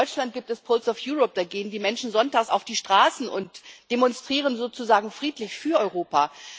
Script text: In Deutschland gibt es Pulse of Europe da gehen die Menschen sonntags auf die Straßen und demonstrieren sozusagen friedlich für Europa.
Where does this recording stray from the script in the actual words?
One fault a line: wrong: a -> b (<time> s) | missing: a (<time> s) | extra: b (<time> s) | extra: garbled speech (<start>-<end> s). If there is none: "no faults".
no faults